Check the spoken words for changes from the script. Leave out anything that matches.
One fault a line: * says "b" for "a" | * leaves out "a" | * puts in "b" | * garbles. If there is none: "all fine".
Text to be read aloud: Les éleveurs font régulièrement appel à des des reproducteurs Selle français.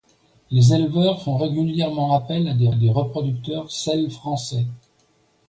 all fine